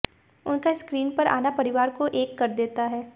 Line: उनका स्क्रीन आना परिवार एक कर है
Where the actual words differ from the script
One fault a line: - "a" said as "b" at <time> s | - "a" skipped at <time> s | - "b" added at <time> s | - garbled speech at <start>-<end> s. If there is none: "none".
- "पर" added at 1.1 s
- "को" added at 1.9 s
- "देता" added at 2.5 s